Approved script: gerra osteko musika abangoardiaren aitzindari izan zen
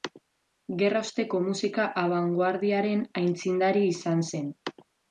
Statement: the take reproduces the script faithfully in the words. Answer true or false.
true